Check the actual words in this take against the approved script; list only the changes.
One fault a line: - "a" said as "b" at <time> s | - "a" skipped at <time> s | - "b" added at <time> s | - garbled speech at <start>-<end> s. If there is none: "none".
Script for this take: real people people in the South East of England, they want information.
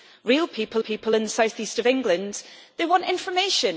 none